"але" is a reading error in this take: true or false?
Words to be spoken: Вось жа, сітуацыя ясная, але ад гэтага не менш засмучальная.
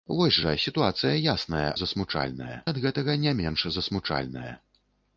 true